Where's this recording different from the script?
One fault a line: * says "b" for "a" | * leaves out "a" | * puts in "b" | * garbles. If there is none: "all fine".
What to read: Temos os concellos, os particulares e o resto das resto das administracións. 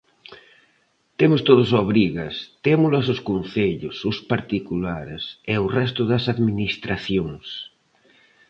* puts in "todos obrigas témolas"
* leaves out "resto das"